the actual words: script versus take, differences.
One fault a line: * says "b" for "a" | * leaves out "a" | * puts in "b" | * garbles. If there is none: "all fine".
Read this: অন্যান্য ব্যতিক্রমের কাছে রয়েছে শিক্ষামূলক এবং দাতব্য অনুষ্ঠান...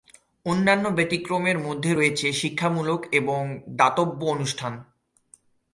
* says "মধ্যে" for "কাছে"